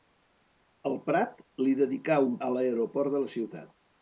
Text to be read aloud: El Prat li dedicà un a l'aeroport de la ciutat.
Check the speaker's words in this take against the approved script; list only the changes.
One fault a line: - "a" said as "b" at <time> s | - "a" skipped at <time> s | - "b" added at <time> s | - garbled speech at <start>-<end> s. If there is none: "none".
none